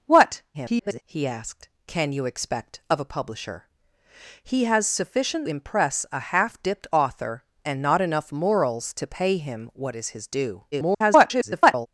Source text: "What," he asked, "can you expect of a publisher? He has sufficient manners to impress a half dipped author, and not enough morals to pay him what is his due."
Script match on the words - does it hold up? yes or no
no